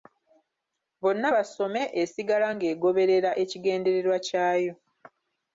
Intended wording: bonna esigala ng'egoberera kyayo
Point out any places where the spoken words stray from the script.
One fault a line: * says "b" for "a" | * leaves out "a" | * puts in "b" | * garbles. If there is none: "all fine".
* puts in "basome"
* puts in "ekigendererwa"